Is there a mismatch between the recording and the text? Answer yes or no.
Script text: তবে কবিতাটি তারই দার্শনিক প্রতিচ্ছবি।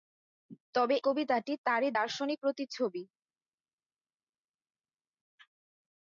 no